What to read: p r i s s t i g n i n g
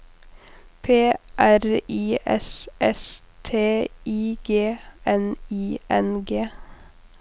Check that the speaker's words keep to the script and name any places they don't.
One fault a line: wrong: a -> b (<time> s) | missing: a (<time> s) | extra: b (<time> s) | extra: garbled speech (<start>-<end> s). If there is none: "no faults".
no faults